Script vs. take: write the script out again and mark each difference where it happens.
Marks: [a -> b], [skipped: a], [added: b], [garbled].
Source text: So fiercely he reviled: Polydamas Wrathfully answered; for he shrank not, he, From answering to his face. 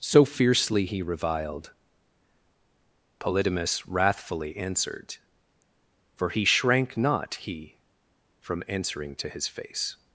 So fiercely he reviled: Polydamas Wrathfully answered; for he shrank not, he, From answering to his face.